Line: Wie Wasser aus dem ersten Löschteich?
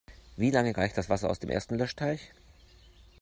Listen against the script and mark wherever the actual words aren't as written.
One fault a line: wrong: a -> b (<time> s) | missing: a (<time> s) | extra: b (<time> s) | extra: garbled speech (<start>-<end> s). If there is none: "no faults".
extra: lange reicht das (0.5 s)